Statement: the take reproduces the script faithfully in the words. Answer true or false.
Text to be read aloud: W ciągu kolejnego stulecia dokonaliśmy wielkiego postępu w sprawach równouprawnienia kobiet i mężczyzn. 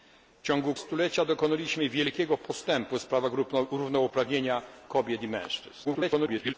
false